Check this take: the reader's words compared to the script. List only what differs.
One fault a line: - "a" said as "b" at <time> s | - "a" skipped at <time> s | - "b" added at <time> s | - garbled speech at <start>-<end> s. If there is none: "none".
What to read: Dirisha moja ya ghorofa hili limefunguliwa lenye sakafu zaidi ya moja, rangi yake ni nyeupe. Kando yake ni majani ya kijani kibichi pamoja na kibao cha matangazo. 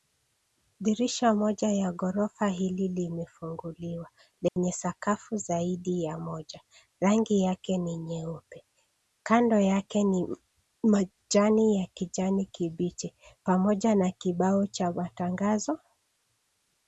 none